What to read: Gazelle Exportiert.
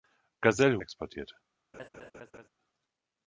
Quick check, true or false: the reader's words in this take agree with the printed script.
true